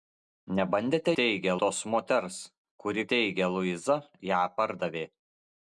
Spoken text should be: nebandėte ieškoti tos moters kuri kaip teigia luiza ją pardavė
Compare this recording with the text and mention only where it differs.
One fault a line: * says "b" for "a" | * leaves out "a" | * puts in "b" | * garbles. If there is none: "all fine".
* says "teigia" for "ieškoti"
* leaves out "kaip"